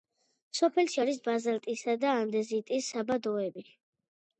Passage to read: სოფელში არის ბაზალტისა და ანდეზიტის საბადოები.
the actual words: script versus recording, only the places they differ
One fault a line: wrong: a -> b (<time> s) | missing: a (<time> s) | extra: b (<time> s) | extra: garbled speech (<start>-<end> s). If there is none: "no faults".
no faults